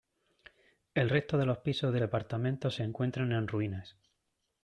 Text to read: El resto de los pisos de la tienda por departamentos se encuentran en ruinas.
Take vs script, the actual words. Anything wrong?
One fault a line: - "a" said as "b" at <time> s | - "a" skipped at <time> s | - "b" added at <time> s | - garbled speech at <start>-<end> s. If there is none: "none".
- "la tienda por" skipped at 2.0 s